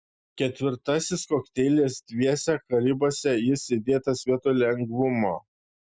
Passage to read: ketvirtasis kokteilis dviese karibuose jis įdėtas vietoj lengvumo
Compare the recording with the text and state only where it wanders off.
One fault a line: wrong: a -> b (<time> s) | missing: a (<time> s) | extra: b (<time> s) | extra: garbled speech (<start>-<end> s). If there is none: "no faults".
no faults